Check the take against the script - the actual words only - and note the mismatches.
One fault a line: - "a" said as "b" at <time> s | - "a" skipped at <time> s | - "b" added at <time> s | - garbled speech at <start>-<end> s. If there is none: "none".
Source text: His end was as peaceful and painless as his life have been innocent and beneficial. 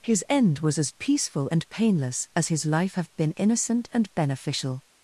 none